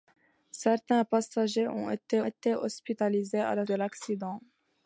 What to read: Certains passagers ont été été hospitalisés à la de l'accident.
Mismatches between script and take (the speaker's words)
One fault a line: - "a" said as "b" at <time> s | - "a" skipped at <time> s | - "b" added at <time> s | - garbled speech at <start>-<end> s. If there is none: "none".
none